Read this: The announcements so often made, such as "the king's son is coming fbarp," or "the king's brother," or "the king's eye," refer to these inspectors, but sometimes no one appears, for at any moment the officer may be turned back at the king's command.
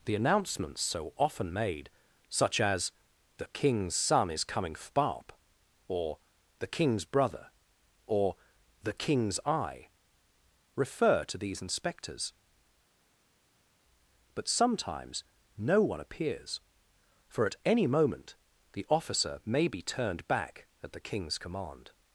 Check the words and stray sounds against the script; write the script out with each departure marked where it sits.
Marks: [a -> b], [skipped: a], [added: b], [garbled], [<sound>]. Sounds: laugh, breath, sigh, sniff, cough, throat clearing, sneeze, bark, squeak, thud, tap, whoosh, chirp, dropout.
The announcements so often made, such as "the king's son is coming fbarp," or "the king's brother," or "the king's eye," refer to these inspectors, but sometimes no one appears, for at any moment the officer may be turned back at the king's command.